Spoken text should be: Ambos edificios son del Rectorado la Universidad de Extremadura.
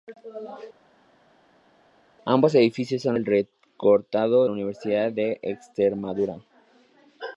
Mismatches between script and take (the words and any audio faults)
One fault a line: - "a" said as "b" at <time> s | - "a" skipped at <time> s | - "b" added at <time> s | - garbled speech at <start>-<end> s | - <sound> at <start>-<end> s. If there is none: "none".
none